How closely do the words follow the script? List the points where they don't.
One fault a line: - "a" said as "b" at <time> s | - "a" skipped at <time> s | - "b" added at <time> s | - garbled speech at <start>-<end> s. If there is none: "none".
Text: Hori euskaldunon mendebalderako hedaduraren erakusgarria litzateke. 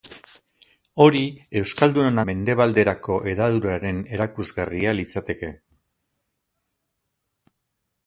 none